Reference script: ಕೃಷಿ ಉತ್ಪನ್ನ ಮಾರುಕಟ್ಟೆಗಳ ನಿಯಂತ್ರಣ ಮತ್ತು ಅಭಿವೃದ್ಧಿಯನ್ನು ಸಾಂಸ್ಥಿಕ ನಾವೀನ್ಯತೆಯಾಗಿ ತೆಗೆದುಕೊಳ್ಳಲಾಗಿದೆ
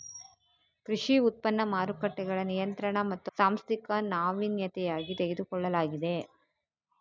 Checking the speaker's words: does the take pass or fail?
fail